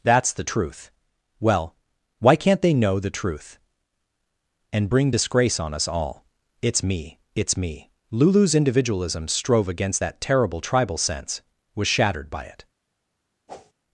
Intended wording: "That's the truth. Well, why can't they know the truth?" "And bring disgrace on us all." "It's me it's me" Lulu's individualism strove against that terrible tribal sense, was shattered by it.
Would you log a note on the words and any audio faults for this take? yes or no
yes